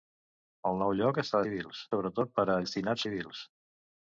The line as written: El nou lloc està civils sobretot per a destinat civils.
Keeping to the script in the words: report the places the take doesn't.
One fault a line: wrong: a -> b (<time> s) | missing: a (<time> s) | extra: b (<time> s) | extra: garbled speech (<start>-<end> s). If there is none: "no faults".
no faults